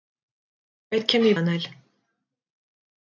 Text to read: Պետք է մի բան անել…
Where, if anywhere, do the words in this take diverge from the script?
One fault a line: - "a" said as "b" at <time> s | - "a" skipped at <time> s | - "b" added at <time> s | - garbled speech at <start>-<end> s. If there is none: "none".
- "բան" skipped at 1.3 s